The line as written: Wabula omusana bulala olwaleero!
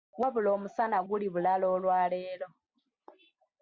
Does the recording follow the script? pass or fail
fail